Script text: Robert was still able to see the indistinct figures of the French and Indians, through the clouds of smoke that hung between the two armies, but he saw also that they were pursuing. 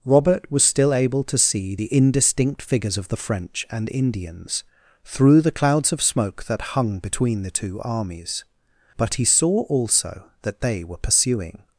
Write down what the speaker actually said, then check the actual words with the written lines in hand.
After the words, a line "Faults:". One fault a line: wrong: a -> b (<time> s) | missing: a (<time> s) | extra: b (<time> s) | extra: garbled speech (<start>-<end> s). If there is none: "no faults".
Robert was still able to see the indistinct figures of the French and Indians, through the clouds of smoke that hung between the two armies, but he saw also that they were pursuing.
Faults:
no faults